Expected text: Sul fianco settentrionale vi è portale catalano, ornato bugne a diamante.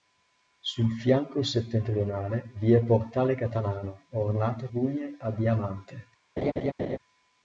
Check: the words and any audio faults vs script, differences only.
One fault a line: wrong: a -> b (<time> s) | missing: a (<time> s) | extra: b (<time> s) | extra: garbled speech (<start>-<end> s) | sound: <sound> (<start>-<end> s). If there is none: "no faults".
sound: laugh (6.4-7.0 s)